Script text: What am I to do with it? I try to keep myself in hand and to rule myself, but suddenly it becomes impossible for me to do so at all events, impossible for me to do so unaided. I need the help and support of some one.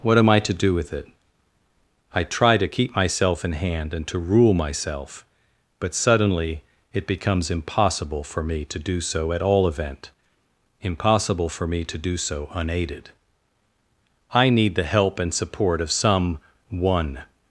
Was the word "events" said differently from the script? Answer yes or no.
yes